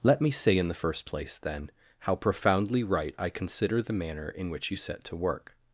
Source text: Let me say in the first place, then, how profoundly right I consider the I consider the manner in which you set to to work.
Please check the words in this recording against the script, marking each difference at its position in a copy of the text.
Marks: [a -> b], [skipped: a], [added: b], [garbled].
Let me say in the first place, then, how profoundly right I consider the [skipped: I consider the] manner in which you set to [skipped: to] work.